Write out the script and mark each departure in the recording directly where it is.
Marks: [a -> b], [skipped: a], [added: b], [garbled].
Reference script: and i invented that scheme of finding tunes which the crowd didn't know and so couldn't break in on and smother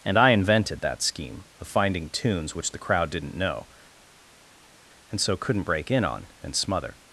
and i invented that scheme of finding tunes which the crowd didn't know and so couldn't break in on and smother